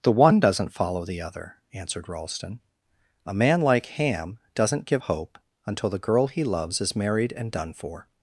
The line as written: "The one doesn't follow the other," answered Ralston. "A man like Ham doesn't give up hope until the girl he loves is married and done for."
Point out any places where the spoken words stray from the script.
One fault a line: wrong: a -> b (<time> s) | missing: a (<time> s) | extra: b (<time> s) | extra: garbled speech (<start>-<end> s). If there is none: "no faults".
missing: up (5.0 s)